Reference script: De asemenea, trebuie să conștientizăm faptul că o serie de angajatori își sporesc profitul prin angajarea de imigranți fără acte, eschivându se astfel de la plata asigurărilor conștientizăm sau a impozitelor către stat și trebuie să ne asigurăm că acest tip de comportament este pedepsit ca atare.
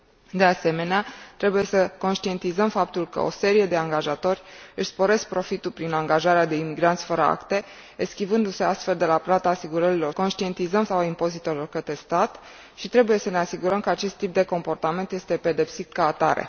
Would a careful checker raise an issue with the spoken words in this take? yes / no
no